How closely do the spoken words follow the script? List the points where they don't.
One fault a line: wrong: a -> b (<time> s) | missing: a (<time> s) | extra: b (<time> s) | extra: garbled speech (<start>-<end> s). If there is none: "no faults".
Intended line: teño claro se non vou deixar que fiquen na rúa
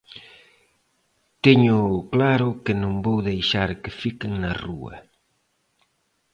wrong: se -> que (2.6 s)